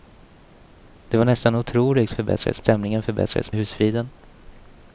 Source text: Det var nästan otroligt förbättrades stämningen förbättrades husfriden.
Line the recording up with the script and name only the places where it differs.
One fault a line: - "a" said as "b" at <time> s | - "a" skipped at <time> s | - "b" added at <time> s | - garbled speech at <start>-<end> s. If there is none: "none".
none